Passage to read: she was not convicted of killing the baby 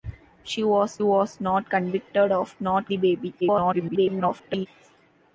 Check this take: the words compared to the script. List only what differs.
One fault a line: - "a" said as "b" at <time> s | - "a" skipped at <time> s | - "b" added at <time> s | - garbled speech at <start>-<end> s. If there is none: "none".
- "was" added at 1.0 s
- "killing" said as "not" at 2.6 s
- garbled speech at 3.4-4.7 s